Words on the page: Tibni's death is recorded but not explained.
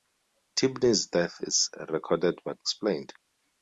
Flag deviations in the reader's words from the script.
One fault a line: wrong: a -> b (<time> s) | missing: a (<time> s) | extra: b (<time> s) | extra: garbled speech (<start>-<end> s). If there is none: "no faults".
missing: not (2.6 s)